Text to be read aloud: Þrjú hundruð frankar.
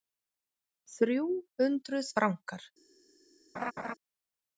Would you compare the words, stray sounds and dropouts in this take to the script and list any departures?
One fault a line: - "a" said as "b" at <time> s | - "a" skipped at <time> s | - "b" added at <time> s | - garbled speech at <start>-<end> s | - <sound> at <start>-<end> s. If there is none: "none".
- laugh at 3.5-3.9 s